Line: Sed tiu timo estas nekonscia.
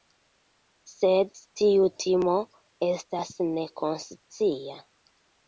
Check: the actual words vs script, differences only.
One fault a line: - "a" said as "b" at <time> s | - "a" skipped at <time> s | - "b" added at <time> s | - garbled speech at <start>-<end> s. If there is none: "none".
none